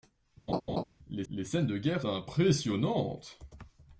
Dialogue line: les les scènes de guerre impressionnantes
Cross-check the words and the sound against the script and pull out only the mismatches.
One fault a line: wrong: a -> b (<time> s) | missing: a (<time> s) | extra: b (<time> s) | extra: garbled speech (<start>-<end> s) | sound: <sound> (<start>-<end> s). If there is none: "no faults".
sound: laugh (0.5-0.8 s)